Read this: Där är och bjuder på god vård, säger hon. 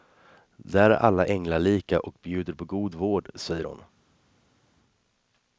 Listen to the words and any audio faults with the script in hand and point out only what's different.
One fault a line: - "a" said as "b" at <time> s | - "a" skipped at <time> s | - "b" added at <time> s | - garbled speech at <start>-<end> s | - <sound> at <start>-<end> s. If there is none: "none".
- "alla änglalika" added at 0.9 s